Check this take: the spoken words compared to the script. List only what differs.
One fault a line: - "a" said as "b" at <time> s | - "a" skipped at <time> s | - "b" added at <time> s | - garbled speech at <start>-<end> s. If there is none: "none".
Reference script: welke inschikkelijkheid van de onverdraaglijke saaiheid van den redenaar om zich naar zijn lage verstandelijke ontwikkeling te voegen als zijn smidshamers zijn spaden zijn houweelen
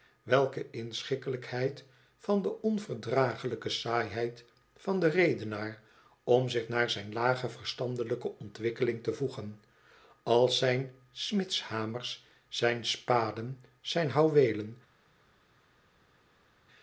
none